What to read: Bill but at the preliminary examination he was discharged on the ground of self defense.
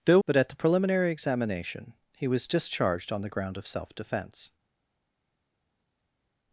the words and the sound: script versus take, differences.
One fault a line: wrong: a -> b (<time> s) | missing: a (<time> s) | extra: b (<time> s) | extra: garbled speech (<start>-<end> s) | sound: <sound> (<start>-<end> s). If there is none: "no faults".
no faults